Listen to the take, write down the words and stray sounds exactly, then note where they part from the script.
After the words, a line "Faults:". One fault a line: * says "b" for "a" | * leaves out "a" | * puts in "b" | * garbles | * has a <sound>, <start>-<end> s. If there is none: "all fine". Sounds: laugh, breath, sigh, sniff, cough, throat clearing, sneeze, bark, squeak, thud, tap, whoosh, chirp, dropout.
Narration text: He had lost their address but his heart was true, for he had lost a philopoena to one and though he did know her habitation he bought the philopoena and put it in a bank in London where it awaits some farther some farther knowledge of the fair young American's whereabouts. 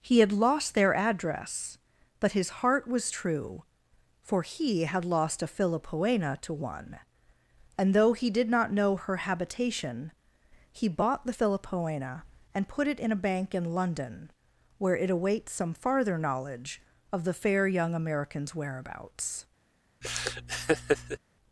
He had lost their address but his heart was true, for he had lost a philopoena to one and though he did not know her habitation he bought the philopoena and put it in a bank in London where it awaits some farther knowledge of the fair young American's whereabouts.
Faults:
* puts in "not"
* leaves out "some farther"
* has a laugh, 20.0-21.2 s